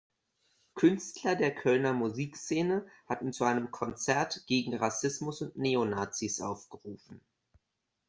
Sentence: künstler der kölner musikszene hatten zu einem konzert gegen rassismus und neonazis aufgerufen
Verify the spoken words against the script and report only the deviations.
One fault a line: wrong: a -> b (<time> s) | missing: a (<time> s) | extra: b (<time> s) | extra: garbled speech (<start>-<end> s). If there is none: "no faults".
no faults